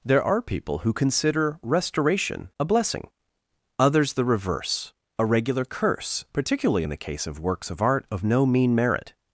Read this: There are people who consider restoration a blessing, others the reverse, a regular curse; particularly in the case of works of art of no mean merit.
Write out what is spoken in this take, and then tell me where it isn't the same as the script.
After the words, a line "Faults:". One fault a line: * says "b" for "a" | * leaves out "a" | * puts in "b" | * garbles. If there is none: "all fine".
There are people who consider restoration a blessing, others the reverse, a regular curse; particularly in the case of works of art of no mean merit.
Faults:
all fine